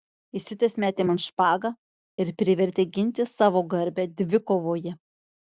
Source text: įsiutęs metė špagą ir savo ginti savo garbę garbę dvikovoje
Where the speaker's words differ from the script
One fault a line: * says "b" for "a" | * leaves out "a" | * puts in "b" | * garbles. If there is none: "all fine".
* puts in "man"
* says "privertė" for "savo"
* leaves out "garbę"